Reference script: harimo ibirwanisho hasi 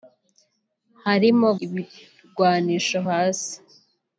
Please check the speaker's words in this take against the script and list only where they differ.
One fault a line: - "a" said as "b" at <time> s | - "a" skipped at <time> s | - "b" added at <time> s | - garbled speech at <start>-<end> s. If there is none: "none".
none